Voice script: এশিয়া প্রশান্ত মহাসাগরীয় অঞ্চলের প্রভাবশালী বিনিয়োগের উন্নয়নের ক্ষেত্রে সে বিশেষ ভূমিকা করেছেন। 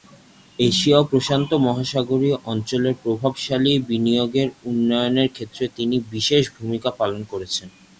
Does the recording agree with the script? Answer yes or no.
no